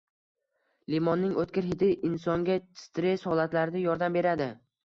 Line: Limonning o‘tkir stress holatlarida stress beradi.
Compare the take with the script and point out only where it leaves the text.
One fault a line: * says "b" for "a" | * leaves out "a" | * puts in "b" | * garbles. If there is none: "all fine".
* puts in "hidi insonga"
* says "yordam" for "stress"